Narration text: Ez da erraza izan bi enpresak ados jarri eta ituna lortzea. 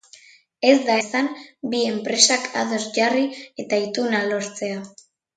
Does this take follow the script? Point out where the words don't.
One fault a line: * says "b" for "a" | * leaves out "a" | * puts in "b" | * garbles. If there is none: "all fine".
* leaves out "erraza"